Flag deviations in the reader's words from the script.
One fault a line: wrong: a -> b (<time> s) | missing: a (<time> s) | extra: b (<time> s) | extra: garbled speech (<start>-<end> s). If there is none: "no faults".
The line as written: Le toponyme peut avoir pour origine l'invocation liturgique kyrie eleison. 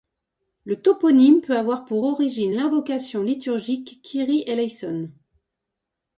no faults